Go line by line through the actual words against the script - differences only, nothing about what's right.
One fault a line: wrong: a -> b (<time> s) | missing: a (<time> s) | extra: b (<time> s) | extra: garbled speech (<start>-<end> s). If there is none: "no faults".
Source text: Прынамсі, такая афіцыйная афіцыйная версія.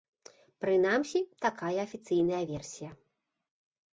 missing: афіцыйная (2.4 s)